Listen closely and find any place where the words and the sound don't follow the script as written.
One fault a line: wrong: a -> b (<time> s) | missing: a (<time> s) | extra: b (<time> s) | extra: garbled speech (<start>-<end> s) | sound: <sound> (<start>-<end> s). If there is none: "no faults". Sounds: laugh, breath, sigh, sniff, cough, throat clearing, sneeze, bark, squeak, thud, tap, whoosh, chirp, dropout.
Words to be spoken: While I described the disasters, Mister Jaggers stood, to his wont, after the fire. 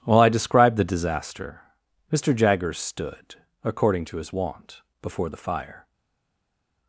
wrong: disasters -> disaster (0.9 s)
extra: according (3.6 s)
wrong: after -> before (5.0 s)